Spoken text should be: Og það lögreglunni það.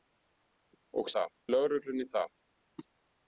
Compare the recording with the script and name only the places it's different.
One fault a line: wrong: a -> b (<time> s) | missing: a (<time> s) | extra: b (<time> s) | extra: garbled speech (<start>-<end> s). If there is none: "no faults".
no faults